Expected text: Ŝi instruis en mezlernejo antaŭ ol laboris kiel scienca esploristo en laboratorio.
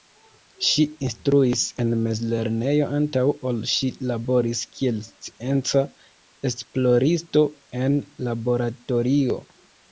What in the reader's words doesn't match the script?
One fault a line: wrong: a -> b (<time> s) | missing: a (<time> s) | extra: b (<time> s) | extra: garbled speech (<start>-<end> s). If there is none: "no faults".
extra: ŝi (3.7 s)